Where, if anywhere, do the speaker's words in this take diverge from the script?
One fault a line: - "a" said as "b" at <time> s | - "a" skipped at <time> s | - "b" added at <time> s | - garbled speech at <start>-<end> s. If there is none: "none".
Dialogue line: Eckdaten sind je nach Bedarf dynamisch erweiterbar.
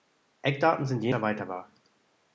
- "nach Bedarf dynamisch" skipped at 1.1 s